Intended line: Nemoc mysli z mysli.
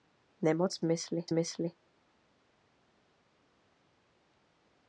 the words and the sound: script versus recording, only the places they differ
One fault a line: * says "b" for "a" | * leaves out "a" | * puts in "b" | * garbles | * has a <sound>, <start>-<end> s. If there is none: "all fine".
all fine